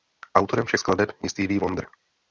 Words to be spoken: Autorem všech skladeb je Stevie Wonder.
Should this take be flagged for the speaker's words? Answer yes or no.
no